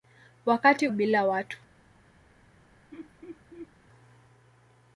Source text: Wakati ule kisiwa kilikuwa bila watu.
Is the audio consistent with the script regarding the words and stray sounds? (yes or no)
no